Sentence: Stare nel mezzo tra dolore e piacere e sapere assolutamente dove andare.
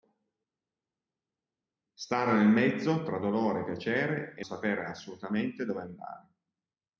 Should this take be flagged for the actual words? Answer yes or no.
no